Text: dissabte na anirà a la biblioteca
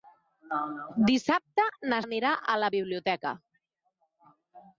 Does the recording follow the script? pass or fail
pass